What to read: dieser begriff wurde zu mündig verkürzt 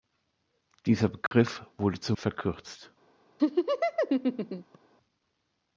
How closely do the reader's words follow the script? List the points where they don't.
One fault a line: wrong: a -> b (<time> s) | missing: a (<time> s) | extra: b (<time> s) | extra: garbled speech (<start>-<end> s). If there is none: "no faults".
missing: mündig (2.2 s)